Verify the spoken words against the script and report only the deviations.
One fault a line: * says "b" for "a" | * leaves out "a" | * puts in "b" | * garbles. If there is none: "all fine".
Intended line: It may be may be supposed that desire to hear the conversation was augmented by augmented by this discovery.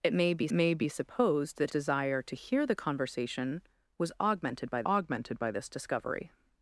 all fine